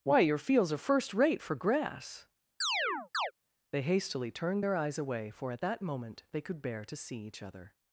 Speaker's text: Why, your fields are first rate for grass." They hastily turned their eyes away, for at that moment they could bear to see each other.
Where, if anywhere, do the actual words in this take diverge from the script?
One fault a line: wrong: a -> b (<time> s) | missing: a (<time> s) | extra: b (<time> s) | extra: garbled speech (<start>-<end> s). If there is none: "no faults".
no faults